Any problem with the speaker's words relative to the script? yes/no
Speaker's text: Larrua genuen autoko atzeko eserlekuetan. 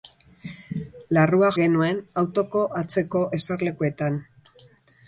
no